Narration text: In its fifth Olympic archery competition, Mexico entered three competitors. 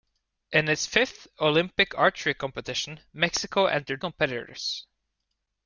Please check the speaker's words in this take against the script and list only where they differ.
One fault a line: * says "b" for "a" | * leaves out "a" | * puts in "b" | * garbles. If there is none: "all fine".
* leaves out "three"